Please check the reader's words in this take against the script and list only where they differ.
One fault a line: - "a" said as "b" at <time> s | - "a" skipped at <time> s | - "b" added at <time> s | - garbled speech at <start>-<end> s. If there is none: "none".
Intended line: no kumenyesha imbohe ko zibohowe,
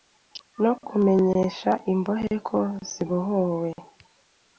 none